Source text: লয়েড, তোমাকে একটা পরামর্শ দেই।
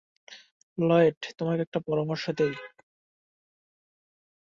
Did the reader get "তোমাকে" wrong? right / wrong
right